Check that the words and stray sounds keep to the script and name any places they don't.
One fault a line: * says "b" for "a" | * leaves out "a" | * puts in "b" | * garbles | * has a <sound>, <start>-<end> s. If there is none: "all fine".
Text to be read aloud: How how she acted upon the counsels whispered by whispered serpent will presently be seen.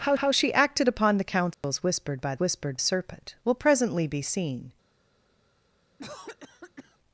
* has a dropout, 1.5-1.6 s
* has a cough, 6.0-7.0 s